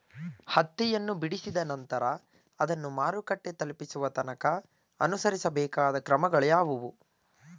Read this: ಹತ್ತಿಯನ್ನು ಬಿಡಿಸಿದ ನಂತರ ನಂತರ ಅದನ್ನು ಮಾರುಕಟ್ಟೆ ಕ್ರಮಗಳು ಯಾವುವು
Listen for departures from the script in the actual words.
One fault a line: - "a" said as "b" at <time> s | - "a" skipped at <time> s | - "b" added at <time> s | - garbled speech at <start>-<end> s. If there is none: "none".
- "ನಂತರ" skipped at 2.0 s
- "ತಲುಪಿಸುವ ತನಕ ಅನುಸರಿಸಬೇಕಾದ" added at 3.5 s